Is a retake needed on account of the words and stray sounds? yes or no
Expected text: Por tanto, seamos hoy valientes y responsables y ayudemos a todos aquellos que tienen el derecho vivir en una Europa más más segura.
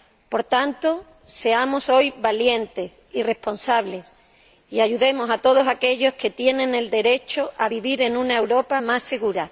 yes